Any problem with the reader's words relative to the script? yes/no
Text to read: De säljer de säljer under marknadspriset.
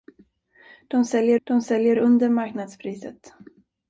no